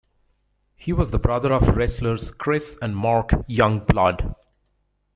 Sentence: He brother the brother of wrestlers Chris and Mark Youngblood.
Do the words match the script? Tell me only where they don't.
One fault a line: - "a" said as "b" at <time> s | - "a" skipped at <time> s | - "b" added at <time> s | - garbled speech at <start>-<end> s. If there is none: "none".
- "brother" said as "was" at 0.9 s